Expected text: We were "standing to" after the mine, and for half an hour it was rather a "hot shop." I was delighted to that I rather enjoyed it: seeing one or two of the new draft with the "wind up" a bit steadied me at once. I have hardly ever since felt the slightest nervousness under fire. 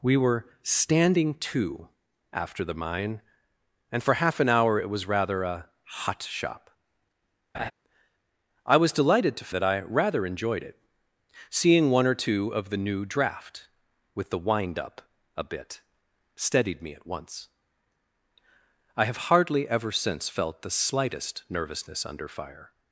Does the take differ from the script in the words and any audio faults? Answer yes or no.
yes